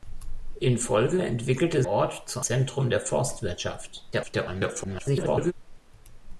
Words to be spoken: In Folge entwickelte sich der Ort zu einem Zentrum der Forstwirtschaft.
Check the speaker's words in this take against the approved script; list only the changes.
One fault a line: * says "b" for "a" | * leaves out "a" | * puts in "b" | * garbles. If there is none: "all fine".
* leaves out "sich der"
* leaves out "einem"
* garbles